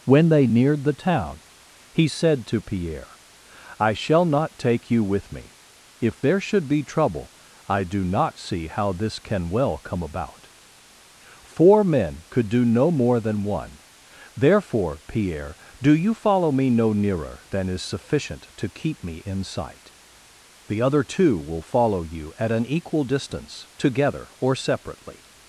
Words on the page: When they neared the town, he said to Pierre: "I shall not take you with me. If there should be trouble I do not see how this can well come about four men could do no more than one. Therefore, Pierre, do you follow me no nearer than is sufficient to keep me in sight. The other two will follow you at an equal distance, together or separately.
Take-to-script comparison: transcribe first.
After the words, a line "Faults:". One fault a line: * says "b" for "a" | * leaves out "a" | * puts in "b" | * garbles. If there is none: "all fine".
When they neared the town, he said to Pierre: "I shall not take you with me. If there should be trouble I do not see how this can well come about four men could do no more than one. Therefore, Pierre, do you follow me no nearer than is sufficient to keep me in sight. The other two will follow you at an equal distance, together or separately.
Faults:
all fine